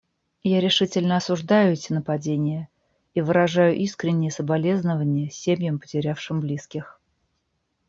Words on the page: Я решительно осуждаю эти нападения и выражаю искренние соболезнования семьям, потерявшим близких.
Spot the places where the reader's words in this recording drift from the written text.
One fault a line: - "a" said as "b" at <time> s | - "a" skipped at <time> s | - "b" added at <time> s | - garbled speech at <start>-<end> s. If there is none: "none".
none